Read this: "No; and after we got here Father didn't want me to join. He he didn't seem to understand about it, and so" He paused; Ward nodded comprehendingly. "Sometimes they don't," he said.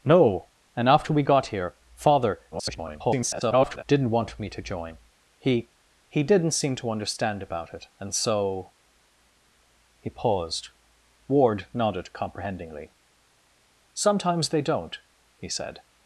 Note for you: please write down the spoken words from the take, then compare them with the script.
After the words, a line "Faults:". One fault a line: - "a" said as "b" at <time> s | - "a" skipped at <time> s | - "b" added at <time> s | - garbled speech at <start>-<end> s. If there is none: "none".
"No; and after we got here Father [garbled] didn't want me to join. He he didn't seem to understand about it, and so" He paused; Ward nodded comprehendingly. "Sometimes they don't," he said.
Faults:
- garbled speech at 2.5-3.8 s